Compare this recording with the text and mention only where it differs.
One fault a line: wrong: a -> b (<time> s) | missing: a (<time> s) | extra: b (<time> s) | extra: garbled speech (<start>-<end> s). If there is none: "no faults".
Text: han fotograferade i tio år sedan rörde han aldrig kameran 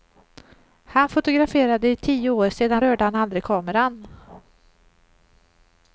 no faults